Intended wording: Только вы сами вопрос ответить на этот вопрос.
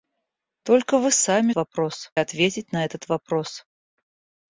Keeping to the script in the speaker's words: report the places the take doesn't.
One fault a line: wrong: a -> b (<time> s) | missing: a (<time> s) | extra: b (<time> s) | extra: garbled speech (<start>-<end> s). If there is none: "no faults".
no faults